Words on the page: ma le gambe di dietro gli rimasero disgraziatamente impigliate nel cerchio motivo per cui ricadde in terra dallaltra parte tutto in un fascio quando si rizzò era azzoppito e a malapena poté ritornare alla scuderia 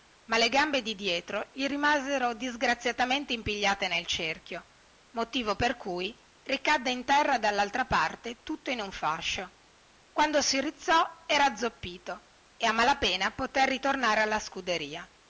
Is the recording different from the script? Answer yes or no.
no